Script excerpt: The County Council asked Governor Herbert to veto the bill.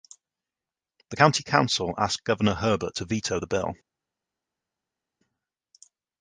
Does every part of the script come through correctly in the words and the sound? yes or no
yes